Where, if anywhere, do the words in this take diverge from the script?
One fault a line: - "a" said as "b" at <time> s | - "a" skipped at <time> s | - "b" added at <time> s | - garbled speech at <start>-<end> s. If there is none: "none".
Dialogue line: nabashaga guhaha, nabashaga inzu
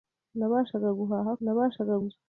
none